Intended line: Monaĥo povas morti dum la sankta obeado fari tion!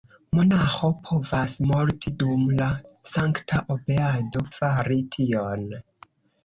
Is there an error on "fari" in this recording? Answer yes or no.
no